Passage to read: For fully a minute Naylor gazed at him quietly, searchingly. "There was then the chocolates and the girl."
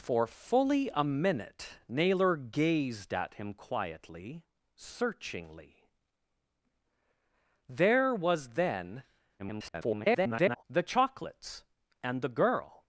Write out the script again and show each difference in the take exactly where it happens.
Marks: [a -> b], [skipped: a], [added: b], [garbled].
For fully a minute Naylor gazed at him quietly, searchingly. "There was then [garbled] the chocolates and the girl."